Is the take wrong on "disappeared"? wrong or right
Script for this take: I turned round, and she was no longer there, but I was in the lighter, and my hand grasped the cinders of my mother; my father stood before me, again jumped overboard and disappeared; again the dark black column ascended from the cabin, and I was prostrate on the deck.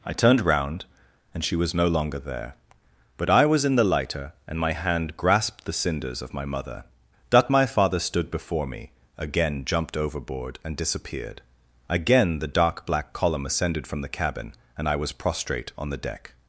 right